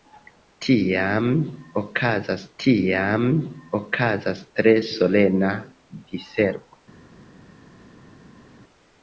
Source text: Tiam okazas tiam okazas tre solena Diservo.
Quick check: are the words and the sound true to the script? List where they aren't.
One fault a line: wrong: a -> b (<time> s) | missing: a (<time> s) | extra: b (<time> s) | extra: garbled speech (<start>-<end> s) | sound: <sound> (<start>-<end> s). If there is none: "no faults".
no faults